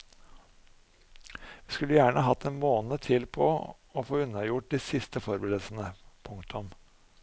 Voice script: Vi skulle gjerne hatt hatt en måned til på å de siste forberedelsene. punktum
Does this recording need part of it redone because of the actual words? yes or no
yes